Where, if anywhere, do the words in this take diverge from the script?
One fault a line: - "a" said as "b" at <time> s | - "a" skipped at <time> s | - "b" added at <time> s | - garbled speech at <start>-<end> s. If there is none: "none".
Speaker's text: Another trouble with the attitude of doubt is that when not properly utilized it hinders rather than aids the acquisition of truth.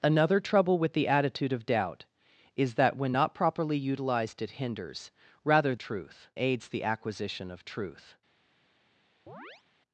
- "than" said as "truth" at 5.8 s